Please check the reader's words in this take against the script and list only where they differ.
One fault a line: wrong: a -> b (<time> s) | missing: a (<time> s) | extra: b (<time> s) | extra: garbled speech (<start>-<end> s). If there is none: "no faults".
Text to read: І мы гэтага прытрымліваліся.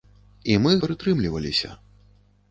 missing: гэтага (0.7 s)